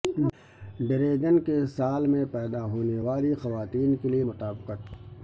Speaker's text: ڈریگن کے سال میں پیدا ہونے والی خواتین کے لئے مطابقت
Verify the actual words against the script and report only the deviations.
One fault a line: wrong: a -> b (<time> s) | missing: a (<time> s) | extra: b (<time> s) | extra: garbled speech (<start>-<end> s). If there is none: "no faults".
no faults